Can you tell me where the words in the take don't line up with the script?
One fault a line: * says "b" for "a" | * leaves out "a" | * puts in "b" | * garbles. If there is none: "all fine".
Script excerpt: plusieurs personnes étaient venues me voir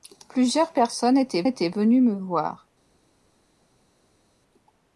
* puts in "étaient"